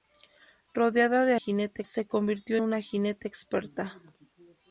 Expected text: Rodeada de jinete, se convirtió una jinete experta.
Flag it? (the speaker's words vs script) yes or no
no